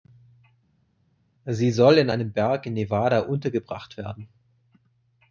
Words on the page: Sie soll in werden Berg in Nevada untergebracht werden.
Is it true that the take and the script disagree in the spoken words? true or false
true